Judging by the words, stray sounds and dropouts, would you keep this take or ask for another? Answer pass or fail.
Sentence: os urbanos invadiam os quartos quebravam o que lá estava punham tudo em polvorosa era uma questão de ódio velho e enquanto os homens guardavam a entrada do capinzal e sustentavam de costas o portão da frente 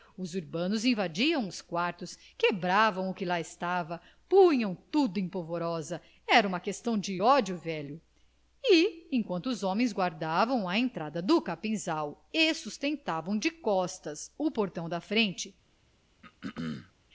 fail